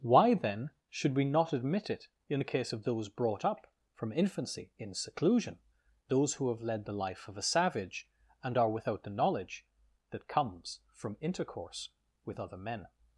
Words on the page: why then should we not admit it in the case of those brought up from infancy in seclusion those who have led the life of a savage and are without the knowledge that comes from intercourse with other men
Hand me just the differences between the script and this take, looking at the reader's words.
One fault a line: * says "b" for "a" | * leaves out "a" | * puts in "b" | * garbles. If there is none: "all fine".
all fine